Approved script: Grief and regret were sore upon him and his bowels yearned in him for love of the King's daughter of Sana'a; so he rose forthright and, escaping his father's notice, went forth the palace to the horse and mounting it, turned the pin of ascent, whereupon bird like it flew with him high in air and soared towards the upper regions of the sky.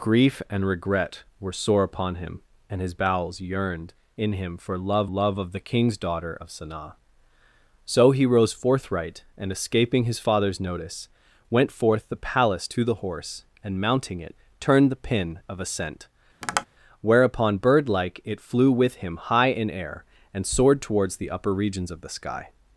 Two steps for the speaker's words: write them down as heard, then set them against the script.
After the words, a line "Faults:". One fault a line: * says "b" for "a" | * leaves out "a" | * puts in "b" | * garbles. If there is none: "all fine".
Grief and regret were sore upon him and his bowels yearned in him for love love of the King's daughter of Sana'a; so he rose forthright and, escaping his father's notice, went forth the palace to the horse and mounting it, turned the pin of ascent, whereupon bird like it flew with him high in air and soared towards the upper regions of the sky.
Faults:
* puts in "love"